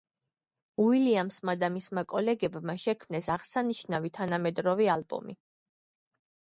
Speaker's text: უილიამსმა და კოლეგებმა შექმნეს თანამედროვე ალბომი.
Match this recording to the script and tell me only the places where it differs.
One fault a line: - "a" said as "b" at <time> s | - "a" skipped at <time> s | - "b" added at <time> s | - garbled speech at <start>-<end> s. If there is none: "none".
- "მისმა" added at 1.8 s
- "აღსანიშნავი" added at 3.4 s